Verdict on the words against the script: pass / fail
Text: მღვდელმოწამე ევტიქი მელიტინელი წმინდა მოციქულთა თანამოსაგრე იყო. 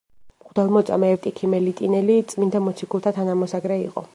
pass